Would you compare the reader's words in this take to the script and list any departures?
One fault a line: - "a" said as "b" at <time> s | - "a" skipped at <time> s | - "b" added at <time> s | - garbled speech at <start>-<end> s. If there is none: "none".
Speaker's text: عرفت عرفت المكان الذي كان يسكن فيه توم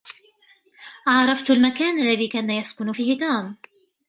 - "عرفت" skipped at 1.5 s